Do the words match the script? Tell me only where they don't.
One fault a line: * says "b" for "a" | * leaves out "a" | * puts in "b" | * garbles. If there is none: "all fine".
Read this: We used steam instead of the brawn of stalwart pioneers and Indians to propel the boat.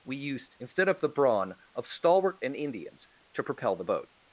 * leaves out "steam"
* leaves out "pioneers"